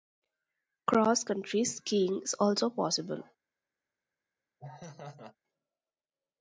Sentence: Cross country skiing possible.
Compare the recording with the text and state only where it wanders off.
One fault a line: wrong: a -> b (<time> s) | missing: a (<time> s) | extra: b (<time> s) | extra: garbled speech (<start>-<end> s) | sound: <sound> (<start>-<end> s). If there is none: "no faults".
extra: is also (2.2 s)
sound: laugh (4.6-5.4 s)